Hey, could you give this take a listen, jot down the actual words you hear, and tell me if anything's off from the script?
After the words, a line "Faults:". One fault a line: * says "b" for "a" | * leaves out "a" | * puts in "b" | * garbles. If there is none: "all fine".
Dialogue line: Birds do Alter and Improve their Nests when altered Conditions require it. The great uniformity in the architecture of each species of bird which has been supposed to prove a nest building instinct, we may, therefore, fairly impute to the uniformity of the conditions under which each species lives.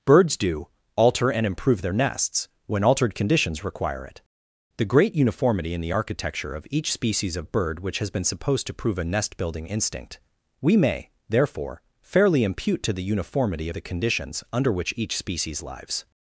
Birds do Alter and Improve their Nests when altered Conditions require it. The great uniformity in the architecture of each species of bird which has been supposed to prove a nest building instinct, we may, therefore, fairly impute to the uniformity of the conditions under which each species lives.
Faults:
all fine